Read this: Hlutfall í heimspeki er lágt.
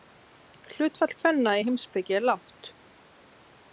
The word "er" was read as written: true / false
true